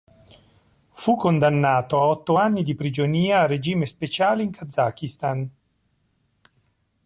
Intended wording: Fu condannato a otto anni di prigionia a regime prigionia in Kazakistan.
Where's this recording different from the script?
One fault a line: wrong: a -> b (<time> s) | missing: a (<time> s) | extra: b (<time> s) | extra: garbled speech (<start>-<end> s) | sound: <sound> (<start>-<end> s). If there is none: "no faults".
wrong: prigionia -> speciale (3.9 s)